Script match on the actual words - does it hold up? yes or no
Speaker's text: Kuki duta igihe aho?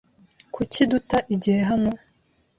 no